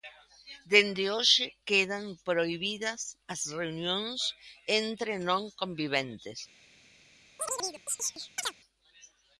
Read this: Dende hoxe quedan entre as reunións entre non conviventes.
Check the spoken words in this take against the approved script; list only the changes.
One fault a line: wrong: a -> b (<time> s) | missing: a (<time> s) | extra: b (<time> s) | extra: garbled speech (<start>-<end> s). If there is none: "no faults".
wrong: entre -> prohibidas (2.3 s)